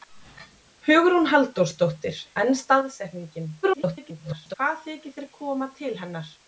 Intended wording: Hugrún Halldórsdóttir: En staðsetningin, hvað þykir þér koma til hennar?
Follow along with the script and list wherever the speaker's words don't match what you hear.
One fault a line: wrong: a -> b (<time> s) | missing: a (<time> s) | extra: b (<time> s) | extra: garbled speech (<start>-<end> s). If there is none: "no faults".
extra: garbled speech (3.6-4.5 s)